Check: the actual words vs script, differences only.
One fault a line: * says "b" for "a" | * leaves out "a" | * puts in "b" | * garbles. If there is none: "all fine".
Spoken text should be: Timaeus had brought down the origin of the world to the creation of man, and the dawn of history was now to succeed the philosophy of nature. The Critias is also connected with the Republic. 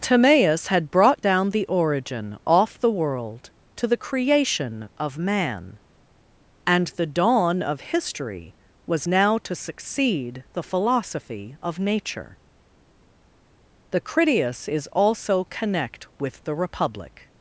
* says "off" for "of"
* says "connect" for "connected"